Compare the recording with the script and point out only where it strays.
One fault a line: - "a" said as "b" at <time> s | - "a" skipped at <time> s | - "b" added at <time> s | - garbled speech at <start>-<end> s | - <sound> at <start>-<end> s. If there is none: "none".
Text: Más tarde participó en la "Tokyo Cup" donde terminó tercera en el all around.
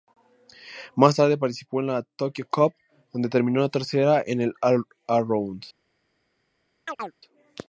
- chirp at 6.9-7.1 s